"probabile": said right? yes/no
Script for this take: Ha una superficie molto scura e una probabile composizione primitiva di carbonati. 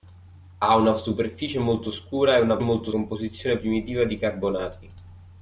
no